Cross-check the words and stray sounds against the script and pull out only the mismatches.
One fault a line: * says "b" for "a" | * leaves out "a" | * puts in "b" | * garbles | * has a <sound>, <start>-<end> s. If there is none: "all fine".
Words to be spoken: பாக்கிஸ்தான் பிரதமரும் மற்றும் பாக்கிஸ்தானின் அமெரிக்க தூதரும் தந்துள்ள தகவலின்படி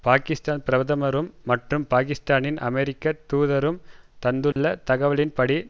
* has a dropout, 4.5-4.6 s